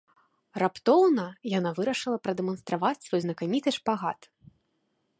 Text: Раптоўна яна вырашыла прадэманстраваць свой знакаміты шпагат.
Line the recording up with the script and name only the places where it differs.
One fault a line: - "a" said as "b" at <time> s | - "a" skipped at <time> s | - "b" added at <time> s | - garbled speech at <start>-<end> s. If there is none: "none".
none